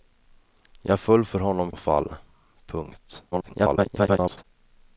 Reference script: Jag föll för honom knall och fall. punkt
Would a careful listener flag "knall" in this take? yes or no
yes